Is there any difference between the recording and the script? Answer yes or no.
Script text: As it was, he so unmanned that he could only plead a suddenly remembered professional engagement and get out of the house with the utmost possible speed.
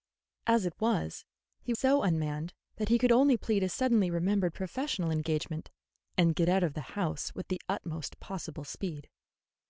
no